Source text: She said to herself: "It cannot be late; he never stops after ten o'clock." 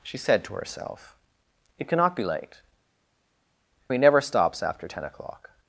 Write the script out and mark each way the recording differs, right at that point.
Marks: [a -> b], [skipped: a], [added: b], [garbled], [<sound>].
She said to herself: "It cannot be late; he never stops after ten o'clock."